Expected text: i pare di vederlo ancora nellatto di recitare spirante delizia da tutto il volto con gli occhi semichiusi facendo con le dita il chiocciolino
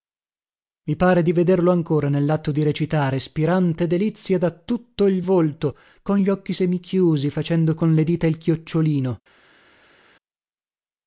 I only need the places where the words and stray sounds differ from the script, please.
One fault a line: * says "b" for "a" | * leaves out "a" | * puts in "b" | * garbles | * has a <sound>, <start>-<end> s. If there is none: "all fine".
all fine